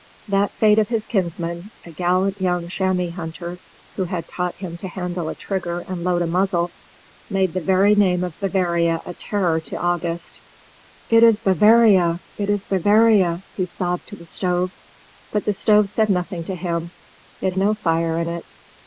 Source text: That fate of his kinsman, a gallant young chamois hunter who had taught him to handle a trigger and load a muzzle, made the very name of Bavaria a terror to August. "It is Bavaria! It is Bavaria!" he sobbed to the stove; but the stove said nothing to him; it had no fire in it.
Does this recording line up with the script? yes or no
no